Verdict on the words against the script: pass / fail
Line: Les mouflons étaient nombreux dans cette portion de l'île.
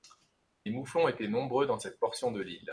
pass